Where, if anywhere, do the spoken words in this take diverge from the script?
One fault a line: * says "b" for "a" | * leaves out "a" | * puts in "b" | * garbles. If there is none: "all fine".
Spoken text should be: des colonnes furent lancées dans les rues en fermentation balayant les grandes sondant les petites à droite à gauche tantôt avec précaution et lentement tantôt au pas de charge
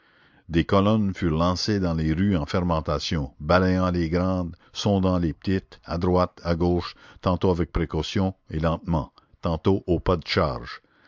all fine